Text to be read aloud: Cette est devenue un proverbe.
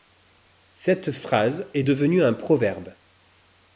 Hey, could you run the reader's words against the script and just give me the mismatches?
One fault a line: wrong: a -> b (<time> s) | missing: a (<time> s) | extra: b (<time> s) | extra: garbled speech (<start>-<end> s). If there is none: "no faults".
extra: phrase (1.1 s)